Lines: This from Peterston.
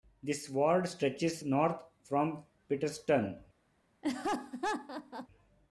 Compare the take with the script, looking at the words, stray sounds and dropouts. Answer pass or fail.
fail